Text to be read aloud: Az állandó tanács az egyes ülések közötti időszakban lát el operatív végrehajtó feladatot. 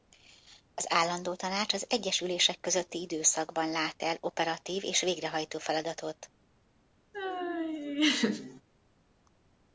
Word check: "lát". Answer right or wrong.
right